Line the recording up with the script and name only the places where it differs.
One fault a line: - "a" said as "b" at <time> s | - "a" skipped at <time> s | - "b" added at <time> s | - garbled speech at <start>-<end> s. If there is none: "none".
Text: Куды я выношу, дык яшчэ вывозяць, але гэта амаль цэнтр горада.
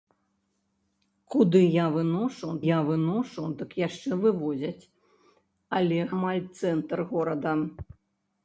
- "я выношу" added at 2.7 s
- "гэта" skipped at 6.0 s